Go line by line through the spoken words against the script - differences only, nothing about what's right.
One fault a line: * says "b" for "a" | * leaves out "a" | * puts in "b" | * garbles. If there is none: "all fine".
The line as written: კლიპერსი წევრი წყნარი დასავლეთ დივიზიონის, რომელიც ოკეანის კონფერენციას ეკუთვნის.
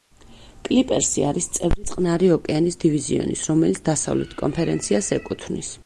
* puts in "არის"
* says "ოკეანის" for "დასავლეთ"
* says "დასავლეთ" for "ოკეანის"